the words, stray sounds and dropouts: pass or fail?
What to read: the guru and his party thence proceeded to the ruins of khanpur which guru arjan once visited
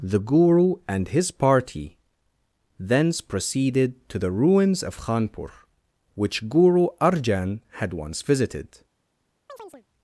fail